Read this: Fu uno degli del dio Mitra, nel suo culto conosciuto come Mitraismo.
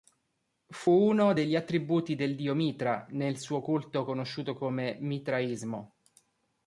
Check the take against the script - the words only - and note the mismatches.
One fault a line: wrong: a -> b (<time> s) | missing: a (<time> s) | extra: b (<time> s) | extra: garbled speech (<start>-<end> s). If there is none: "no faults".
extra: attributi (1.6 s)